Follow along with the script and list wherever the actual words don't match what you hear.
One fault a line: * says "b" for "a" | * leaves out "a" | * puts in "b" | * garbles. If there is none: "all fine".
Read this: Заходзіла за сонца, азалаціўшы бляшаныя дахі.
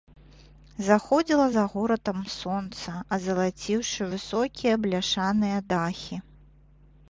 * puts in "горадам"
* puts in "высокія"